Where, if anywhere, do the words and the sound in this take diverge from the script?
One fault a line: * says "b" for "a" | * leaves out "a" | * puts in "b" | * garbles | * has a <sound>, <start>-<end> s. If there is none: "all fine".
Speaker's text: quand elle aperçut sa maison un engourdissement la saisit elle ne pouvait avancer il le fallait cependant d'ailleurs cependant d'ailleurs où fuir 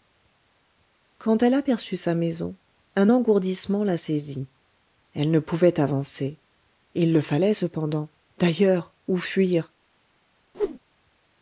* leaves out "cependant d'ailleurs"
* has a whoosh, 10.5-10.8 s